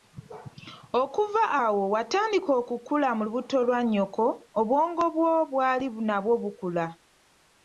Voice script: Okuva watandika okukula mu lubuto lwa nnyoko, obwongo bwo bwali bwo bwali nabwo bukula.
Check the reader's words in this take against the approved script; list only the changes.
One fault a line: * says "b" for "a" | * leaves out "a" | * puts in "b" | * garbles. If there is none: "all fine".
* puts in "awo"
* leaves out "bwo bwali"